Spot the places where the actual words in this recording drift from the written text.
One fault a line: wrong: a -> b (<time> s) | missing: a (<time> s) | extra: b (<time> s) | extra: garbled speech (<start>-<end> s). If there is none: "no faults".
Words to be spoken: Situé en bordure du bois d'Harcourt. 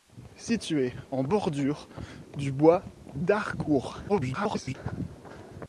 extra: garbled speech (4.1-4.7 s)